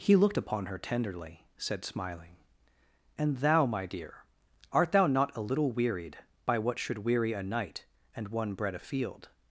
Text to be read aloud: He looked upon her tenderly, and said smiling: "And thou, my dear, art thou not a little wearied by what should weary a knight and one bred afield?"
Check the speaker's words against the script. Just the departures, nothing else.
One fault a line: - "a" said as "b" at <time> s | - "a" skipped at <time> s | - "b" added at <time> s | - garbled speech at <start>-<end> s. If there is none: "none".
- "and" skipped at 1.4 s